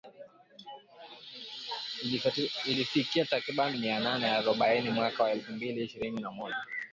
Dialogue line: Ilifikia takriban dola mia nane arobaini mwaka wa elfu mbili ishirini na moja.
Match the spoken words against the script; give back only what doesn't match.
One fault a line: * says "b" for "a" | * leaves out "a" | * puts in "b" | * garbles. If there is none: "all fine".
* leaves out "dola"